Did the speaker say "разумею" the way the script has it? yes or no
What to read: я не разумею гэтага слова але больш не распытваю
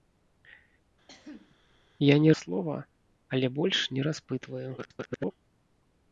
no